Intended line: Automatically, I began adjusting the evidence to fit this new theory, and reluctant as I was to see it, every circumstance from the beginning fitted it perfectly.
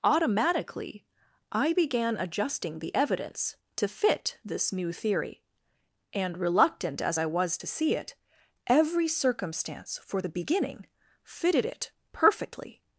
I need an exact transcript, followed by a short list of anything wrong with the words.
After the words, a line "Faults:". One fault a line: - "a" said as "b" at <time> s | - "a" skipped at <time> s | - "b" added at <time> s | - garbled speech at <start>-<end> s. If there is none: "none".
Automatically, I began adjusting the evidence to fit this new theory, and reluctant as I was to see it, every circumstance for the beginning fitted it perfectly.
Faults:
- "from" said as "for" at 10.0 s